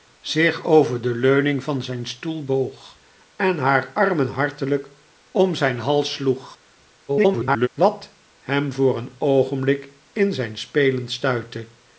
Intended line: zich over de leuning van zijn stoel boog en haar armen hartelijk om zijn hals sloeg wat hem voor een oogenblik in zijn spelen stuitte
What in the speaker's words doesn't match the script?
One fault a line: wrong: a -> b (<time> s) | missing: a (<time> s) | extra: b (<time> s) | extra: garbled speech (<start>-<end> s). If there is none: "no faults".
extra: garbled speech (7.1-7.7 s)